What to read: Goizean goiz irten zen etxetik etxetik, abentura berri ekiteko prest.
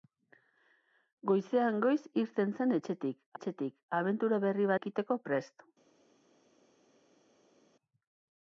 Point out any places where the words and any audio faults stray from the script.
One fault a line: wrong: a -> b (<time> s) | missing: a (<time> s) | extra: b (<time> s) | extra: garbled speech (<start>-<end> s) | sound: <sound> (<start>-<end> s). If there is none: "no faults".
no faults